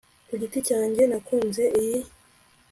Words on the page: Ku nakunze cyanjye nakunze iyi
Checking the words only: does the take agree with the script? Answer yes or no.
no